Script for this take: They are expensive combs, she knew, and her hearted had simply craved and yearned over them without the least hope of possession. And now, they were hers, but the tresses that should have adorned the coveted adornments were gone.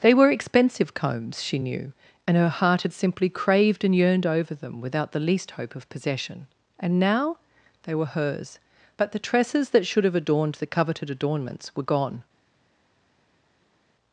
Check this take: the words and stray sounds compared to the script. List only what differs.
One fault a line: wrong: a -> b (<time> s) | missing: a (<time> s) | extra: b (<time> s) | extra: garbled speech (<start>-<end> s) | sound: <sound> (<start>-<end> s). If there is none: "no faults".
wrong: are -> were (0.1 s)
wrong: hearted -> heart (2.5 s)